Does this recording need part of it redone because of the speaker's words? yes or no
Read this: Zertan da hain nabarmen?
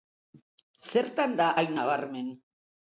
no